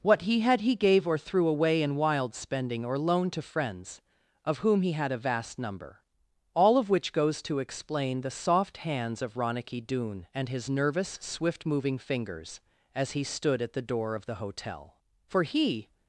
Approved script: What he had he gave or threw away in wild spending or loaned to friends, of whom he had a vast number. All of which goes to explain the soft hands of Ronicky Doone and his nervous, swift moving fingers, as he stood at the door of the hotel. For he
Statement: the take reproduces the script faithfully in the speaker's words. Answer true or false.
true